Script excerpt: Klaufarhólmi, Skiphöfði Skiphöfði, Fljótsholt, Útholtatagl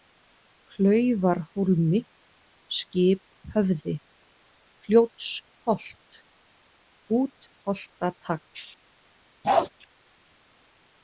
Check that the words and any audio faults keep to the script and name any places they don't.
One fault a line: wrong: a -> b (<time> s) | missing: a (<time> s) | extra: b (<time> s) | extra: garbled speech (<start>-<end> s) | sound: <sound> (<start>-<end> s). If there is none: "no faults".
missing: Skiphöfði (4.0 s)
sound: bark (9.4-9.7 s)